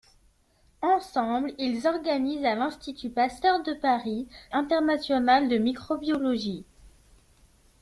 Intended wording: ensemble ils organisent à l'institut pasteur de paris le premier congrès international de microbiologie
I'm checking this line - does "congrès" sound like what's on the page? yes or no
no